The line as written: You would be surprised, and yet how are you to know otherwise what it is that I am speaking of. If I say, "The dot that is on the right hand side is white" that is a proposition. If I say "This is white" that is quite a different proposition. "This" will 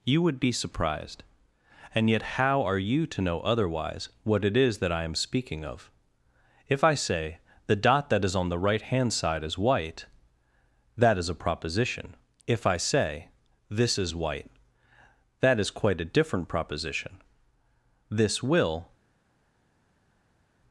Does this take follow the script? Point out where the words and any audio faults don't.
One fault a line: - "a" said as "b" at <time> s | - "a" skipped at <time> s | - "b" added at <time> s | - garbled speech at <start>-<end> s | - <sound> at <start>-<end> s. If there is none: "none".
none